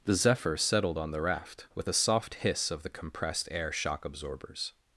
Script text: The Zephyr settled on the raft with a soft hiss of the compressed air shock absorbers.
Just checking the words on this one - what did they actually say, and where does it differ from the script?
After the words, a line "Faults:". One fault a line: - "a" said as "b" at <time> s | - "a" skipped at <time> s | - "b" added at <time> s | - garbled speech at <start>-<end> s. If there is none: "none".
The Zephyr settled on the raft with a soft hiss of the compressed air shock absorbers.
Faults:
none